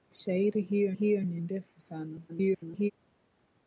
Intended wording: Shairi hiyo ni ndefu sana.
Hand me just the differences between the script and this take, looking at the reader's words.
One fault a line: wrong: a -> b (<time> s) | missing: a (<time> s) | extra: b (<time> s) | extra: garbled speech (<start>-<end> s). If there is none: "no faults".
extra: hiyo (0.9 s)
extra: garbled speech (2.3-2.9 s)